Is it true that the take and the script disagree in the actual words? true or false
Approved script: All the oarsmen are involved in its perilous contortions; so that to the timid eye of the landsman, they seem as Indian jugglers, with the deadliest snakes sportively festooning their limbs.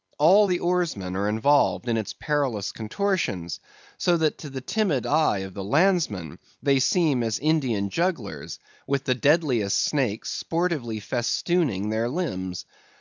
false